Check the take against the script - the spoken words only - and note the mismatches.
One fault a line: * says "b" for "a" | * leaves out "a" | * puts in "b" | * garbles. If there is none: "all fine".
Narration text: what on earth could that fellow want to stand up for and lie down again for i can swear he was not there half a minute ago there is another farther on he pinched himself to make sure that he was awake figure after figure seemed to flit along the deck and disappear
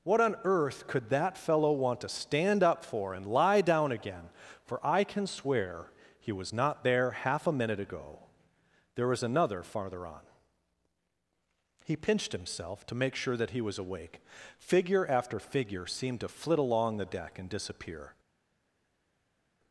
* says "was" for "is"